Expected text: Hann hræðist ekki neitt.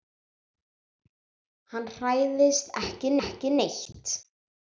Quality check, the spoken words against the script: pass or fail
fail